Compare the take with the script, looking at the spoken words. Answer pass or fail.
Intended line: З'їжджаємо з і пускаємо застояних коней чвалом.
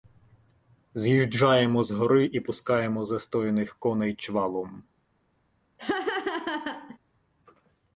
fail